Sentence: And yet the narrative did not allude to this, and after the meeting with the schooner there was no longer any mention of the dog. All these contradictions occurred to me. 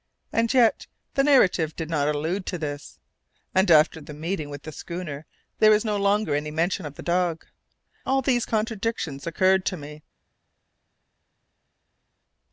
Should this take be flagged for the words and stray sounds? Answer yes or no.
no